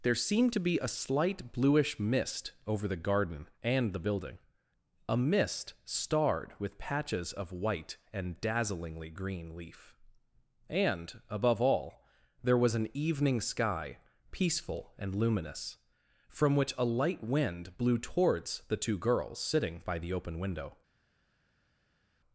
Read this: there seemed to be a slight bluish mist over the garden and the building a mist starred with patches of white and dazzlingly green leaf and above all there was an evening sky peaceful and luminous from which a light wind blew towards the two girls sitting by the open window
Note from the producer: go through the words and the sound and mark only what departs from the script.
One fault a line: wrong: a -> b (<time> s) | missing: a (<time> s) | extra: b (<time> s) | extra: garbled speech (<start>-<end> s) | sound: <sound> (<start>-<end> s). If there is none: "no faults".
no faults